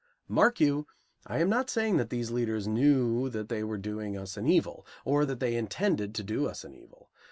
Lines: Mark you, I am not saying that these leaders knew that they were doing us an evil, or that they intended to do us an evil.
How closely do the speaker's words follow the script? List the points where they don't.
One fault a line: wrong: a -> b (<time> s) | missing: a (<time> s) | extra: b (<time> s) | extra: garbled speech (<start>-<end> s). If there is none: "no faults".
no faults